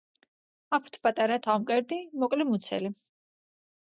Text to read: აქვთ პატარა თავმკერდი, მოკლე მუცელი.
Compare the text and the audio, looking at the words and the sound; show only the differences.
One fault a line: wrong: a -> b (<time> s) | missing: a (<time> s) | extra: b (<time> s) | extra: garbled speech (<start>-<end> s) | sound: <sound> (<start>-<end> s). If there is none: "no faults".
no faults